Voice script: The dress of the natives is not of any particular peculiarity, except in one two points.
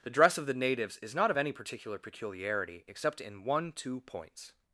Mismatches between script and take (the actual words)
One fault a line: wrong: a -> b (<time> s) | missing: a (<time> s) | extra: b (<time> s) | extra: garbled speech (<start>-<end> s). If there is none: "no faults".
no faults